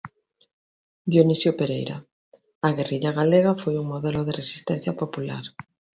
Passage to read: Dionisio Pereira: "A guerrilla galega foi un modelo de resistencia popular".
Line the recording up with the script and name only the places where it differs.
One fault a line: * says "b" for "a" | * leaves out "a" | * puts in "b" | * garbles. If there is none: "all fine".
all fine